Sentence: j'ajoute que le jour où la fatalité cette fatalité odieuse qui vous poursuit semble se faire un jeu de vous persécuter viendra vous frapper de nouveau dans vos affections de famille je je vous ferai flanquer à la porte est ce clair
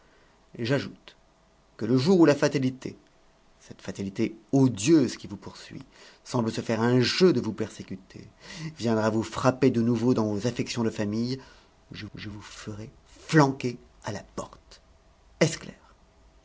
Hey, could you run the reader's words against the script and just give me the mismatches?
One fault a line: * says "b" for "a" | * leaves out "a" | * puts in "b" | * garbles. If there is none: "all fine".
all fine